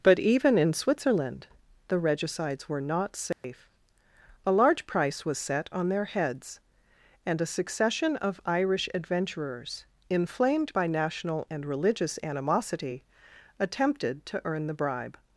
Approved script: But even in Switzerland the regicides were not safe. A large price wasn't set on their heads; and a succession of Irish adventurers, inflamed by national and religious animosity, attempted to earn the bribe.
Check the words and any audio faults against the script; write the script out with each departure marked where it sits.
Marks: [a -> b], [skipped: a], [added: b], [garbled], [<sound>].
But even in Switzerland the regicides were not safe. [dropout] A large price [wasn't -> was] set on their heads; and a succession of Irish adventurers, inflamed by national and religious animosity, attempted to earn the bribe.